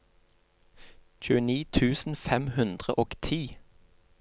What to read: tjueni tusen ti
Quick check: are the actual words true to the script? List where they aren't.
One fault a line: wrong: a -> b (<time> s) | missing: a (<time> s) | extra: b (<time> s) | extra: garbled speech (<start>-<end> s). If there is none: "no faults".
extra: fem hundre og (2.2 s)